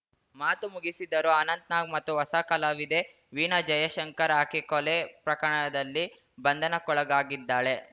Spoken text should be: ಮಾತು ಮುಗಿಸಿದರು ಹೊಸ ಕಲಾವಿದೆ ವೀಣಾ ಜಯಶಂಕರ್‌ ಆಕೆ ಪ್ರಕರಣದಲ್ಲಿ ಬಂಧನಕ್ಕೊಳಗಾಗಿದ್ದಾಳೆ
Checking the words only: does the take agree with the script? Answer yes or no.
no